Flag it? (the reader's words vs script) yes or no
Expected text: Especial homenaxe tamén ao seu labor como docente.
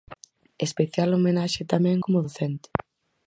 yes